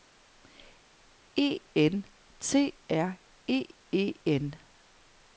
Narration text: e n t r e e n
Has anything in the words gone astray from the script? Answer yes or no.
no